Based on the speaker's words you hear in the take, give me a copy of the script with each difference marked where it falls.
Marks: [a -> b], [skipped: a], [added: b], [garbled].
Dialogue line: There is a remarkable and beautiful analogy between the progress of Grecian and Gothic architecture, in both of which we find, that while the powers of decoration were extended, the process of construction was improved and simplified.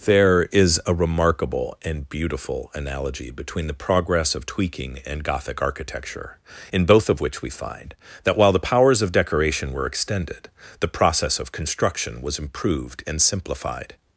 There is a remarkable and beautiful analogy between the progress of [Grecian -> Tweaking] and Gothic architecture, in both of which we find, that while the powers of decoration were extended, the process of construction was improved and simplified.